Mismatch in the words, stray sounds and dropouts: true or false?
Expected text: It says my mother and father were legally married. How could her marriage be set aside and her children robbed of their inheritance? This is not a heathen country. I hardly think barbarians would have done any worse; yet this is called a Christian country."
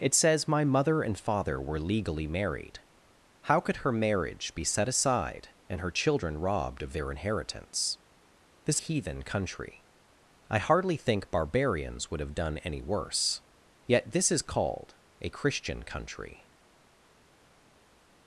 true